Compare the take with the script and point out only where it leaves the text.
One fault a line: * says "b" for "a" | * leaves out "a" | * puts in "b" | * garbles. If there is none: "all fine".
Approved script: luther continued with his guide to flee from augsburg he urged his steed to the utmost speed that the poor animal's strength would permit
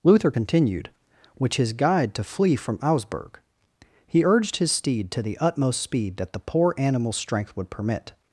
* says "which" for "with"